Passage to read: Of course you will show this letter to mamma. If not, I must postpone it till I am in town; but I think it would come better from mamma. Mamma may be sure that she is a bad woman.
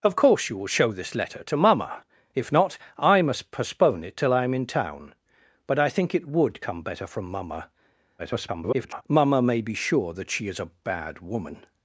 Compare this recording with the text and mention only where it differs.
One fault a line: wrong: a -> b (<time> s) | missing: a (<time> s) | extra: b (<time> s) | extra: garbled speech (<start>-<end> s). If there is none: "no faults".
extra: garbled speech (8.2-9.0 s)